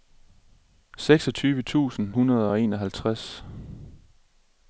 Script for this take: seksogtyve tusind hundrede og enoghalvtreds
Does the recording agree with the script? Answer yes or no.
yes